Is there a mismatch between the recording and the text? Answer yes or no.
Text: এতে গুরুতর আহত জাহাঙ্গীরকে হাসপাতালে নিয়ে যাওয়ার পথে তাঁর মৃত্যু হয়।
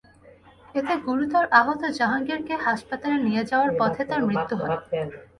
no